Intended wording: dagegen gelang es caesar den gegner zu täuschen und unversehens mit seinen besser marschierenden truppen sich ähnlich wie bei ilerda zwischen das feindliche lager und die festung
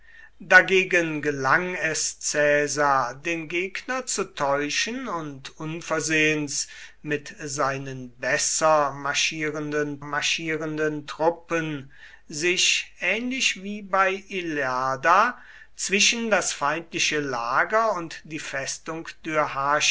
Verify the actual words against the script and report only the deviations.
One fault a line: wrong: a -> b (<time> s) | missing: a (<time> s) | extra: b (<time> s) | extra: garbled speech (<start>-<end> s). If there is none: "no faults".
extra: marschierenden (10.0 s)